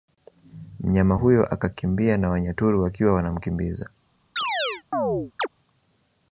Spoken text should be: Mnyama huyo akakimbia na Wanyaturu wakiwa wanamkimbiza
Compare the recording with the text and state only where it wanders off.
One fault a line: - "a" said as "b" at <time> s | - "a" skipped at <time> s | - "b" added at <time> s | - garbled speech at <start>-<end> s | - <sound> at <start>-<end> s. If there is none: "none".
- chirp at 4.4-5.5 s